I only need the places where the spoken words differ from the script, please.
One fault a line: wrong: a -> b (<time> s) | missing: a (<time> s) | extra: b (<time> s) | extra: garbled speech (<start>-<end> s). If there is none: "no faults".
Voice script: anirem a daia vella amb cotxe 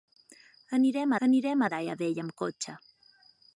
extra: anirem (1.3 s)